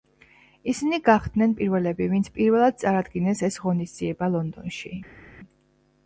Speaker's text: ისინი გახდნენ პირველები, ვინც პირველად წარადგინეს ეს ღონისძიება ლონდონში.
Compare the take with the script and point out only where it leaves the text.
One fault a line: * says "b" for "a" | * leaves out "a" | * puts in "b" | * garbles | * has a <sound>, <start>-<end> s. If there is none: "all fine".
all fine